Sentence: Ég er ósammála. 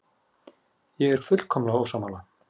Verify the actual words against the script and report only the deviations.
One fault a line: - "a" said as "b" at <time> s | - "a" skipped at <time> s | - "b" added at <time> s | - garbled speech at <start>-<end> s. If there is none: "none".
- "fullkomlega" added at 1.3 s